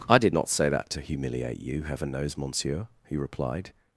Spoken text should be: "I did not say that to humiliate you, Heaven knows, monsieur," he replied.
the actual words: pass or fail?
pass